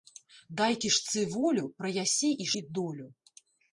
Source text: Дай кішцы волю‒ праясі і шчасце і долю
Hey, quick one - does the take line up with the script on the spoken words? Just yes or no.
no